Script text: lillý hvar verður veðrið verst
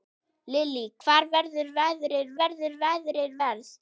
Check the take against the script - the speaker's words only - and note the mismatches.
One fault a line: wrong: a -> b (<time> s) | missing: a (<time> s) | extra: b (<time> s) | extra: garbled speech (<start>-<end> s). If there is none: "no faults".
extra: verður veðrið (2.4 s)